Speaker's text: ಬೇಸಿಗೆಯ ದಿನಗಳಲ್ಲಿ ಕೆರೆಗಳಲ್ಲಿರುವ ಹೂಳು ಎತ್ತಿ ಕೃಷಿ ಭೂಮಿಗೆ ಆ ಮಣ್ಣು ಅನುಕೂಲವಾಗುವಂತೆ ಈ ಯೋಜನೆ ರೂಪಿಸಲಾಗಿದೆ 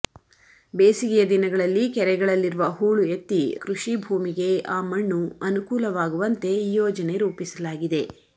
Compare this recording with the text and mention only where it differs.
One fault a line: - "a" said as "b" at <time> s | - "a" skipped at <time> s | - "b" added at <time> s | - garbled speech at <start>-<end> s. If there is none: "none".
none